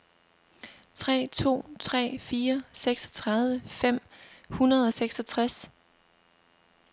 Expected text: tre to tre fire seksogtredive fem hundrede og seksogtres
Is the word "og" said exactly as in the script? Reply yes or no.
yes